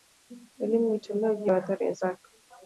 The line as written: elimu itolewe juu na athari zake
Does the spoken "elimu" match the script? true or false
true